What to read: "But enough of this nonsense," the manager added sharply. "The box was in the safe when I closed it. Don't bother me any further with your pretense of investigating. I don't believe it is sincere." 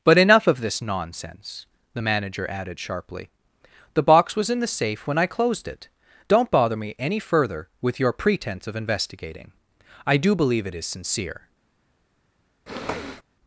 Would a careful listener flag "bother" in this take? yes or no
no